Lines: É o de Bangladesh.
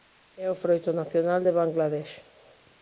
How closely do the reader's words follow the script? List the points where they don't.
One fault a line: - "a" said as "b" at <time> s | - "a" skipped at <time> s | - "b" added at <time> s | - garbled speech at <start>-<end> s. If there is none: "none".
- "froito nacional" added at 0.6 s